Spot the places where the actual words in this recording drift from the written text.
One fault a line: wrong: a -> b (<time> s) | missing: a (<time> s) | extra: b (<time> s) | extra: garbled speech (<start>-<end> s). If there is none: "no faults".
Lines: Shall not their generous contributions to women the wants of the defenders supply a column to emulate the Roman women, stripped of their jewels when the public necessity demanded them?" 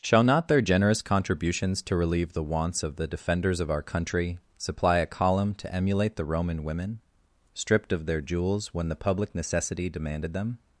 wrong: women -> relieve (1.9 s)
extra: of our country (3.6 s)